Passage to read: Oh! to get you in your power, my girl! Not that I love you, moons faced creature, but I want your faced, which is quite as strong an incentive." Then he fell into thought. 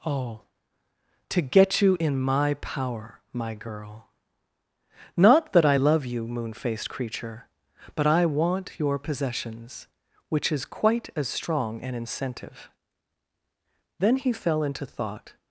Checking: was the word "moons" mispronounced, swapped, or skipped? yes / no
yes